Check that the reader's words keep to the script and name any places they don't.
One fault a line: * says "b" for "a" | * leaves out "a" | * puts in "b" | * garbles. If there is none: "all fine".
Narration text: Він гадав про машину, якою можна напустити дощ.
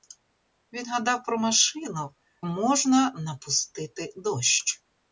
* leaves out "якою"